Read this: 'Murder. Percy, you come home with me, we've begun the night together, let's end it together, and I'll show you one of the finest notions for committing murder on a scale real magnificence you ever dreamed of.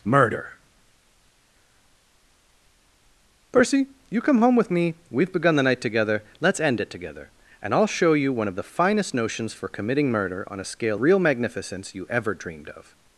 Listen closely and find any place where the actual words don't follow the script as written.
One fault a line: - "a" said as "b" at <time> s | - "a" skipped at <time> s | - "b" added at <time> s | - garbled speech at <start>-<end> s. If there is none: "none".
none